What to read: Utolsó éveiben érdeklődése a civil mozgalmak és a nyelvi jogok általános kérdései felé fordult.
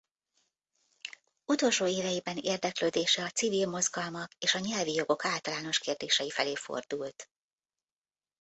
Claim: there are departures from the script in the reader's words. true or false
false